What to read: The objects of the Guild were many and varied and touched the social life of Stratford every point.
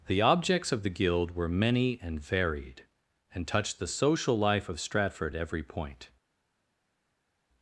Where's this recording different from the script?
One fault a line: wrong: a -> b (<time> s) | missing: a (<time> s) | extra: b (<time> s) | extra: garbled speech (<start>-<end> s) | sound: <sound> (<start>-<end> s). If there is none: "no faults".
no faults